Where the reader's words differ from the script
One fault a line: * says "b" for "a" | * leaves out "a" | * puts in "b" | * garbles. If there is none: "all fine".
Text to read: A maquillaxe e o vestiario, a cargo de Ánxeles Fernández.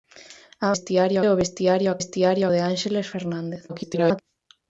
* says "vestiario" for "maquillaxe"
* says "vestiario" for "cargo"
* garbles